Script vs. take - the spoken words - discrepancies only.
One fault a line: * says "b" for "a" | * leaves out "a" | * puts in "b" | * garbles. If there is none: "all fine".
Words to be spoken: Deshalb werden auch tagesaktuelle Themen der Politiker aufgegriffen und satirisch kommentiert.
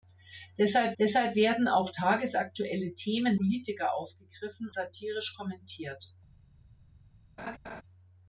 * puts in "deshalb"
* leaves out "der"
* leaves out "und"